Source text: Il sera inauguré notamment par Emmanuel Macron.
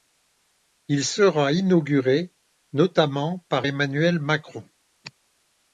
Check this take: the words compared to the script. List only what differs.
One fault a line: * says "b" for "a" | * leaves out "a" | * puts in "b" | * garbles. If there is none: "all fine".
all fine